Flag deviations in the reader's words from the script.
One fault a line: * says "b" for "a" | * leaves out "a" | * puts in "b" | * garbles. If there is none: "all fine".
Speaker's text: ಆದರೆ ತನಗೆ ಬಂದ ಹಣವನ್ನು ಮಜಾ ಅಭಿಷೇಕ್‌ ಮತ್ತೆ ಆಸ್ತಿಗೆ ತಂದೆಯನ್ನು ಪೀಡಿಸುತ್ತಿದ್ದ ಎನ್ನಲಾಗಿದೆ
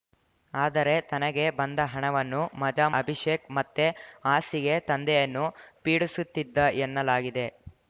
all fine